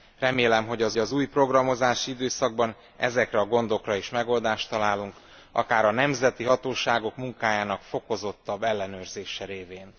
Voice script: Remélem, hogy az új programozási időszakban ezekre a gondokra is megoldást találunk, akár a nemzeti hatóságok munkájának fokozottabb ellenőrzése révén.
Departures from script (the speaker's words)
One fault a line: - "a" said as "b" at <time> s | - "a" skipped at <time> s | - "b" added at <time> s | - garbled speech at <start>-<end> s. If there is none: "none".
- "az" added at 1.0 s